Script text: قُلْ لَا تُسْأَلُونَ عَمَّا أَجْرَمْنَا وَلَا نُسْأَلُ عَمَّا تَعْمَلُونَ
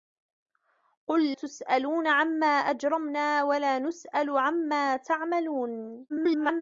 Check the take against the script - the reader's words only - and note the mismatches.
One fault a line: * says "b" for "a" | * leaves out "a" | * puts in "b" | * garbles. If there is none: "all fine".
* leaves out "لَا"
* garbles